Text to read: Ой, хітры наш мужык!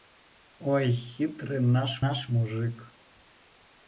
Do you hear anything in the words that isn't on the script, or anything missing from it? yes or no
yes